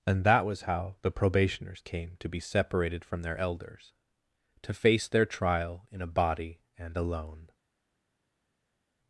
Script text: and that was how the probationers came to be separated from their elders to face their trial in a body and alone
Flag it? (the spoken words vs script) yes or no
no